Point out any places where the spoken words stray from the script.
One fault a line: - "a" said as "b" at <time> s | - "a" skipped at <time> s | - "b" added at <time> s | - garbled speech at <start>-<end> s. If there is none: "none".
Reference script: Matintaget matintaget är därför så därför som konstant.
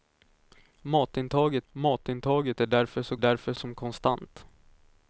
none